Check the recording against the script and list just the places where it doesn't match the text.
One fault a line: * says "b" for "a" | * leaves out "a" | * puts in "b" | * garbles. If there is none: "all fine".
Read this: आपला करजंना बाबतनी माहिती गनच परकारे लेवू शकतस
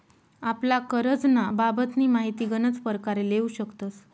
all fine